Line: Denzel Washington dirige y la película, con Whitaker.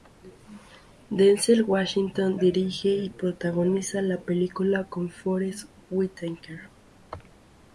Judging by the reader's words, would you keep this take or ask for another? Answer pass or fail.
fail